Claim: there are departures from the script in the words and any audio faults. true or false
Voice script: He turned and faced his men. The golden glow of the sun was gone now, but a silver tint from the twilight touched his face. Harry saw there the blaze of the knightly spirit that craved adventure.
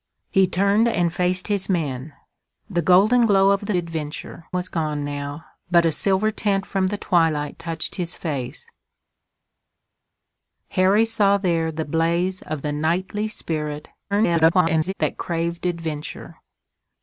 true